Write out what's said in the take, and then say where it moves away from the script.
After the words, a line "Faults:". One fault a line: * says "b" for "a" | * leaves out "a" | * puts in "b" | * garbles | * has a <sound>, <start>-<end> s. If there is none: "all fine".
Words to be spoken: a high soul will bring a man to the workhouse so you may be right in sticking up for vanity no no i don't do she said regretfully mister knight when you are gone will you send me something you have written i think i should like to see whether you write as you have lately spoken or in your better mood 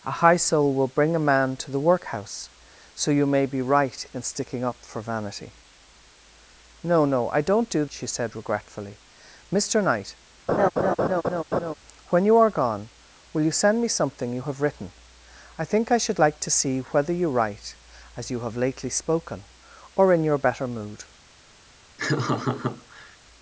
a high soul will bring a man to the workhouse so you may be right in sticking up for vanity no no i don't do she said regretfully mister knight when you are gone will you send me something you have written i think i should like to see whether you write as you have lately spoken or in your better mood
Faults:
* has a laugh, 10.5-11.7 s
* has a laugh, 22.0-23.2 s